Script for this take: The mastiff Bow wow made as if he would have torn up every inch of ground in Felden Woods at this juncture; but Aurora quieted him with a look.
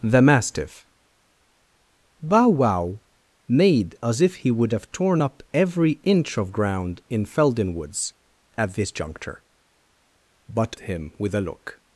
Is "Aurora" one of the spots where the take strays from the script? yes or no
yes